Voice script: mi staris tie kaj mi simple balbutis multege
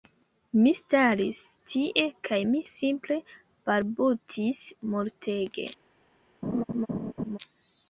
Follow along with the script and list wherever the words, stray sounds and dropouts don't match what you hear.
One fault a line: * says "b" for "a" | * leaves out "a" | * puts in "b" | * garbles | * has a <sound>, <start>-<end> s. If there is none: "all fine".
* has a laugh, 6.4-7.4 s